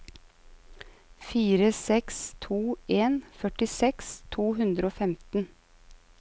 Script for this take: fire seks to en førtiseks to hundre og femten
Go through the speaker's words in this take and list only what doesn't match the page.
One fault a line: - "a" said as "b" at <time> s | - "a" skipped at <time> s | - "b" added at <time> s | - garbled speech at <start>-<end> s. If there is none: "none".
none